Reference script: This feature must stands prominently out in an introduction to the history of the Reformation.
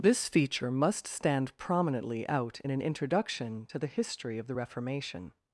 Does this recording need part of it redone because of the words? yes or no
yes